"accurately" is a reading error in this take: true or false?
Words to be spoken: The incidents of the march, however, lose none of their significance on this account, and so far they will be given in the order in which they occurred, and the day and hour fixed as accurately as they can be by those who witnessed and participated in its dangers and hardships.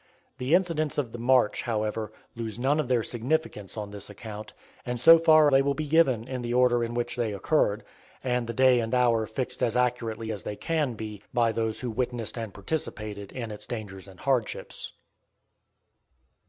false